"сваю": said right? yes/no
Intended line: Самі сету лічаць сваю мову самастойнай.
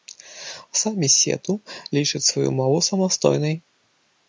yes